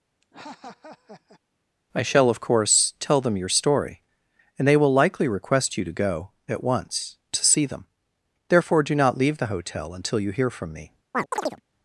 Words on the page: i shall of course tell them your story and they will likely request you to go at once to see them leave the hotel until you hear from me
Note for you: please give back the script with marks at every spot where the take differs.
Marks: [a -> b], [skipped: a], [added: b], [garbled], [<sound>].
[laugh] i shall of course tell them your story and they will likely request you to go at once to see them [added: therefore do not] leave the hotel until you hear from me [chirp]